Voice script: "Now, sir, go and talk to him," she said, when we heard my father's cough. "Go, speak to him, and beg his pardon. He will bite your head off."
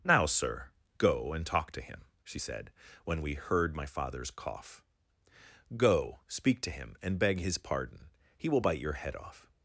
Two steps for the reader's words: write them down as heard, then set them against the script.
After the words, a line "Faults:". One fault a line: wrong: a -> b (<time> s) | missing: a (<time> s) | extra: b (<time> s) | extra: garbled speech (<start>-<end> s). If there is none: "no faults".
"Now, sir, go and talk to him," she said, when we heard my father's cough. "Go, speak to him, and beg his pardon. He will bite your head off."
Faults:
no faults